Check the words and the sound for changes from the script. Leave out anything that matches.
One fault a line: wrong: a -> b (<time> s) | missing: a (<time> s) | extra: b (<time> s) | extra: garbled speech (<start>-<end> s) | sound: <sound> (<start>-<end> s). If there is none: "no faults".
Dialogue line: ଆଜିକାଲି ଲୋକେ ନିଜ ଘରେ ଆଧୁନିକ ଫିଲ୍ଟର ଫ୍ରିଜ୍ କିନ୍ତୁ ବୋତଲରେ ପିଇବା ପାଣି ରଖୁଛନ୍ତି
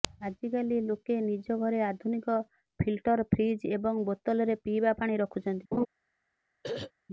wrong: କିନ୍ତୁ -> ଏବଂ (3.7 s)
sound: laugh (5.7-5.9 s)
sound: throat clearing (6.6-6.9 s)